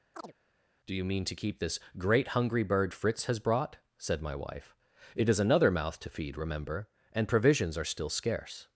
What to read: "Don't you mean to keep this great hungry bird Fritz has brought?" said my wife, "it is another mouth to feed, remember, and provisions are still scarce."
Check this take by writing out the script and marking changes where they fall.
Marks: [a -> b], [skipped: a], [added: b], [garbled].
["Don't -> Do] you mean to keep this great hungry bird Fritz has brought?" said my wife, "it is another mouth to feed, remember, and provisions are still scarce."